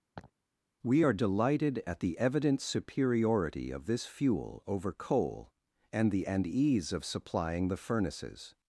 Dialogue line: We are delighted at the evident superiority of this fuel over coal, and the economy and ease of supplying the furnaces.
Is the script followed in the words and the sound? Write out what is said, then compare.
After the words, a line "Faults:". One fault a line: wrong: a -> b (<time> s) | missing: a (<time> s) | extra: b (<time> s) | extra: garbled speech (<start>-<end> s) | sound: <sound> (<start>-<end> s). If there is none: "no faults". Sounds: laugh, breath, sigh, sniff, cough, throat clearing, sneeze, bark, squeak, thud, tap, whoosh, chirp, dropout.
We are delighted at the evident superiority of this fuel over coal, and the and ease of supplying the furnaces.
Faults:
sound: laugh (0.1-0.3 s)
missing: economy (6.3 s)